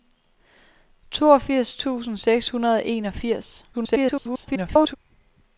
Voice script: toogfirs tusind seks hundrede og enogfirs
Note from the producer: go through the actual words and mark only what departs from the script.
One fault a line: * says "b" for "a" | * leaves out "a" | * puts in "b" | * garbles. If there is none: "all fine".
* garbles